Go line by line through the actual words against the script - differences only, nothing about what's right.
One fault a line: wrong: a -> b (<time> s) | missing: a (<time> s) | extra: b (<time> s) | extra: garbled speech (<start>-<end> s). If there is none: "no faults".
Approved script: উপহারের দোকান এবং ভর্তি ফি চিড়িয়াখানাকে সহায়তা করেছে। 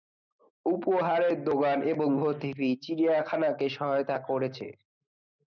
no faults